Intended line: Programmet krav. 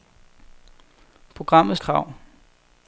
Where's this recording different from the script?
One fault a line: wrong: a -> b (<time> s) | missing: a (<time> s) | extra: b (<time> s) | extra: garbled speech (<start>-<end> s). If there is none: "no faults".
no faults